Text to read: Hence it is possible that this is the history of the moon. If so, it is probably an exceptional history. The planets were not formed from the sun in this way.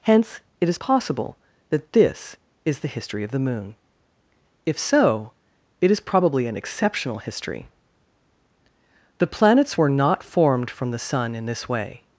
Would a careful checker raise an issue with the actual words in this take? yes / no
no